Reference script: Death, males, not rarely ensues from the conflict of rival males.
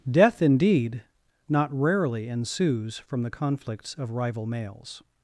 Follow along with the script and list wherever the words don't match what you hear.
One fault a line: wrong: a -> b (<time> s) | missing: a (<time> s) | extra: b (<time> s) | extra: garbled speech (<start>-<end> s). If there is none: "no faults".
wrong: males -> indeed (0.4 s)
wrong: conflict -> conflicts (3.3 s)